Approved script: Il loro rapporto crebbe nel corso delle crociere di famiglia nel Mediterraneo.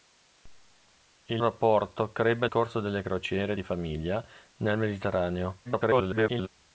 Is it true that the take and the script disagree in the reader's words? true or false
true